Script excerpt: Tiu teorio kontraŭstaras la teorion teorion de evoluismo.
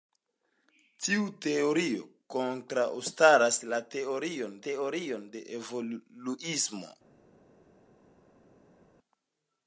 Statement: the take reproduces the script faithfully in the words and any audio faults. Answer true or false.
true